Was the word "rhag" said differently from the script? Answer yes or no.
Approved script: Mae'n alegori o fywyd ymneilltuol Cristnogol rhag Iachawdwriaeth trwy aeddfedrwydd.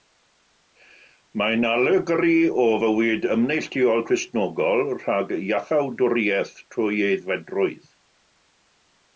no